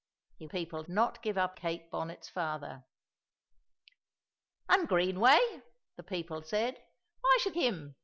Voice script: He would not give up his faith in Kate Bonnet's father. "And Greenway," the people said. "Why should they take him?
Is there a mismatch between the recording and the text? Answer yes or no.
yes